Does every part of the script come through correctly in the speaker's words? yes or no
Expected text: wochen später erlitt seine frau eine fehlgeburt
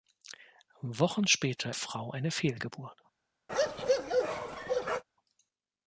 no